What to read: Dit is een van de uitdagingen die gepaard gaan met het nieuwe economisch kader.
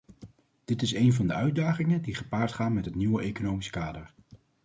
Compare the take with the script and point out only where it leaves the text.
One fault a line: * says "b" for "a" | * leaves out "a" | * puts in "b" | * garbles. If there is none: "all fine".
all fine